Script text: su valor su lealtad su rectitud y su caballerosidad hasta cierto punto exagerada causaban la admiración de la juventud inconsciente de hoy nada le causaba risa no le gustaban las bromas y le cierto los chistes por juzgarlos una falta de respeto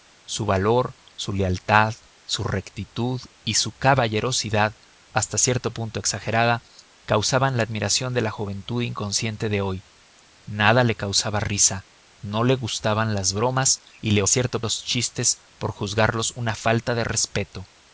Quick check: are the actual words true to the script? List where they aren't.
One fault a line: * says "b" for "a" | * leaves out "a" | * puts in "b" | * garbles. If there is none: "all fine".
all fine